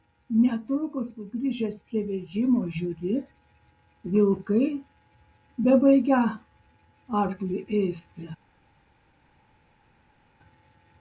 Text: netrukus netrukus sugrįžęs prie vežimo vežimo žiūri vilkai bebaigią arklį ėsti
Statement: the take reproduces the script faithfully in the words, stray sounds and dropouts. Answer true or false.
false